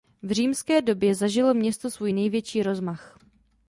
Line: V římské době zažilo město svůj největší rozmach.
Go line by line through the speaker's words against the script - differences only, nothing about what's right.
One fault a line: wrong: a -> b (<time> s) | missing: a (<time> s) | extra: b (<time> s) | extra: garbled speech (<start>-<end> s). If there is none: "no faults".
no faults